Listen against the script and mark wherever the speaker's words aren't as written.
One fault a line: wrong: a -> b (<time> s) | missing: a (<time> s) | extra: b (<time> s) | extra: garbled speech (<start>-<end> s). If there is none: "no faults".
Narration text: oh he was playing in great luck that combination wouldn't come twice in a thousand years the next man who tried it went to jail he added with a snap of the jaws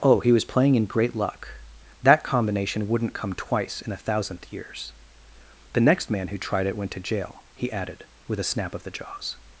wrong: thousand -> thousandth (4.0 s)